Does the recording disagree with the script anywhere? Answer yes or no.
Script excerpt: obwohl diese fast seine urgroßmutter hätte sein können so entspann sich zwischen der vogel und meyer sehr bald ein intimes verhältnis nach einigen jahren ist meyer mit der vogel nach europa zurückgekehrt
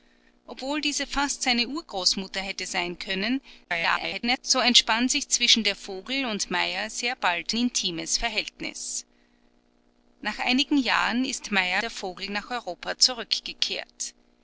yes